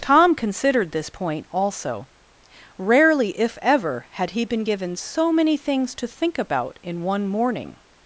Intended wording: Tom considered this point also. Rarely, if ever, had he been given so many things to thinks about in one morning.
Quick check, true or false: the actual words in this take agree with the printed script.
false